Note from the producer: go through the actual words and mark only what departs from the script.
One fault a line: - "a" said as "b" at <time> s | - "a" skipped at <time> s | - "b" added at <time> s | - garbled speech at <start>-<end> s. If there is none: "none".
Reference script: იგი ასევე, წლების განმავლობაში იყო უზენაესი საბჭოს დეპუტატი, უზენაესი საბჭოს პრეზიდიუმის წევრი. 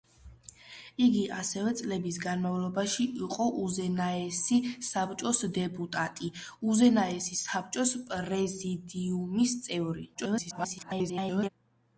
- garbled speech at 10.1-11.5 s